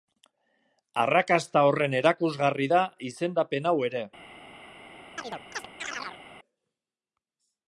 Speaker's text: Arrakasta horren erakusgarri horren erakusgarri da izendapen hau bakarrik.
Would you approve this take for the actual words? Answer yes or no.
no